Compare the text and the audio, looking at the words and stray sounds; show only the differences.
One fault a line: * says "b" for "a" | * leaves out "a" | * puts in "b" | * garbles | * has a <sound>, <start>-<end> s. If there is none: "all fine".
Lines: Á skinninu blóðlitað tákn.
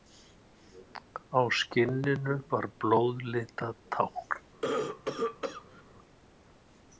* puts in "var"
* has a cough, 4.6-5.8 s